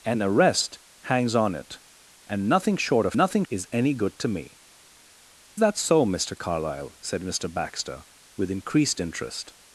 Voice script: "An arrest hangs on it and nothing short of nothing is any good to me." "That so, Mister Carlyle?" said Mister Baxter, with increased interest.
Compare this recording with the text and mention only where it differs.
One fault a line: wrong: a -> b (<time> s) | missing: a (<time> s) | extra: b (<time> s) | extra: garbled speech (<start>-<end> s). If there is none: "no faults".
no faults